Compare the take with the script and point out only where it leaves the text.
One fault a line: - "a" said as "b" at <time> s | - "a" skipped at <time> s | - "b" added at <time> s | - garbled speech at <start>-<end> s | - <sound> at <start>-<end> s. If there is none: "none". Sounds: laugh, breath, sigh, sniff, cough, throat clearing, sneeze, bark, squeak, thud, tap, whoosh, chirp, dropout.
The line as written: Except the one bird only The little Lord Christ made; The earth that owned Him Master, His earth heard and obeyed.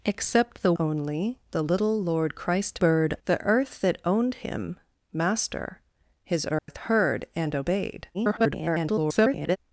- "one bird" skipped at 0.7 s
- "made" said as "bird" at 2.8 s
- dropout at 6.6-6.7 s
- garbled speech at 8.1-9.6 s